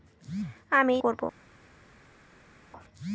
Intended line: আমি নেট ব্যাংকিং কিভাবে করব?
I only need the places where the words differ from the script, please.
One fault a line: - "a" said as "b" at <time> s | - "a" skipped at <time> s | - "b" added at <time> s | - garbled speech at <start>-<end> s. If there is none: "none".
- "নেট ব্যাংকিং কিভাবে" skipped at 0.9 s